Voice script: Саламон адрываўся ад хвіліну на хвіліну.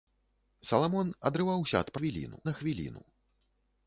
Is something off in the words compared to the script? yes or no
no